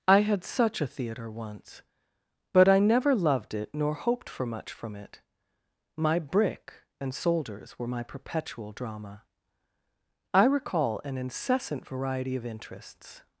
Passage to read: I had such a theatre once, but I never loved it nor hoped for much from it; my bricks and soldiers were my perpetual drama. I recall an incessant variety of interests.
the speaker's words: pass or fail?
fail